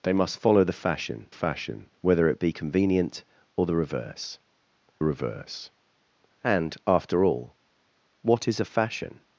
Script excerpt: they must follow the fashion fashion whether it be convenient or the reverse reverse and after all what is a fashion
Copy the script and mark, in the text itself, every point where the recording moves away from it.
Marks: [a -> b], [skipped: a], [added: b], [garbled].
they must follow the fashion fashion whether it be convenient or the reverse reverse and after all what is a fashion